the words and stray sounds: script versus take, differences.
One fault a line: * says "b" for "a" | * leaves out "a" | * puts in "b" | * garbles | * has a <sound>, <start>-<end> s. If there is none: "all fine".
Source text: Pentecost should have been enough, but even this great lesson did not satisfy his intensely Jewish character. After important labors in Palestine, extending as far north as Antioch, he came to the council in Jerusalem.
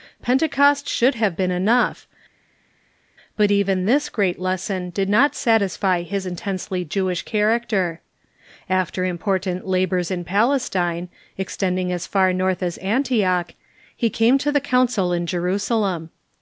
all fine